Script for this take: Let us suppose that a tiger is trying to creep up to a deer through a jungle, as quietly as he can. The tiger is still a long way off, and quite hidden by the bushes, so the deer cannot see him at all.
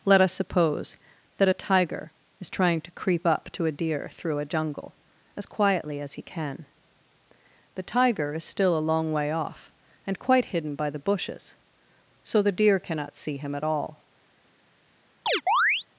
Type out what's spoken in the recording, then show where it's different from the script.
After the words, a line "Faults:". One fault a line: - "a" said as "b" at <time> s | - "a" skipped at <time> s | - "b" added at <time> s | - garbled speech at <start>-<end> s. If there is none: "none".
Let us suppose that a tiger is trying to creep up to a deer through a jungle, as quietly as he can. The tiger is still a long way off, and quite hidden by the bushes, so the deer cannot see him at all.
Faults:
none